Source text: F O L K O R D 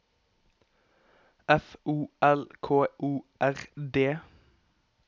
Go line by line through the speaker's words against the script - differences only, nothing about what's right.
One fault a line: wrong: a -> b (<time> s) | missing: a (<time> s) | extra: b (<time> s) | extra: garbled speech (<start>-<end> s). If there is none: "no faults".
no faults